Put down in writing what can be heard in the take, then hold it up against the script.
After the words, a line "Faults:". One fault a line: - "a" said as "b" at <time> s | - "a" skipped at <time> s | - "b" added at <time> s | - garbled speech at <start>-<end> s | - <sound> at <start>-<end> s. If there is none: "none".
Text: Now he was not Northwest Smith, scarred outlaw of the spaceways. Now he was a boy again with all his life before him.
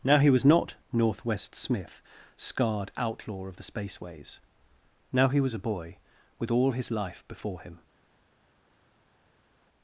Now he was not Northwest Smith, scarred outlaw of the spaceways. Now he was a boy with all his life before him.
Faults:
- "again" skipped at 6.0 s